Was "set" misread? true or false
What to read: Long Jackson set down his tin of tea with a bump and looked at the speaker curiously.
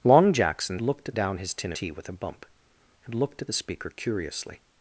true